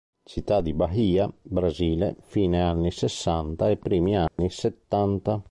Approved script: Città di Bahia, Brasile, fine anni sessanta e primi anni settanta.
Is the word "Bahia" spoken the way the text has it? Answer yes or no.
yes